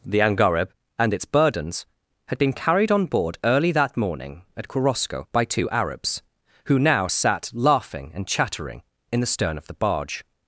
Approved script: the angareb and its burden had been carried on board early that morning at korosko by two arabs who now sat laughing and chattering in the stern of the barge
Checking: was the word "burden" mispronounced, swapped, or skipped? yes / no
yes